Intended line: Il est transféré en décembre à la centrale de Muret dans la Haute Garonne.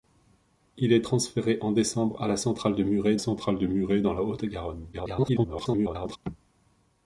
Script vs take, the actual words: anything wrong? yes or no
yes